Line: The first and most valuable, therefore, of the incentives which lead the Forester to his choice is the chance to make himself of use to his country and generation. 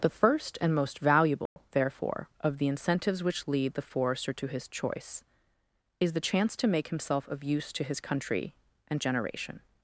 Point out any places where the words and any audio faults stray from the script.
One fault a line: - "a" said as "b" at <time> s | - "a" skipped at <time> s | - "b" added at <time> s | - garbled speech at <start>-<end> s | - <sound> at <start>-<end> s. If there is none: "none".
- dropout at 1.5-1.6 s